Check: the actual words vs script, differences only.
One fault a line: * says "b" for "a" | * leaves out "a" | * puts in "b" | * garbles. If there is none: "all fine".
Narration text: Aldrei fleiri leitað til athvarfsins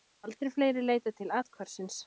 all fine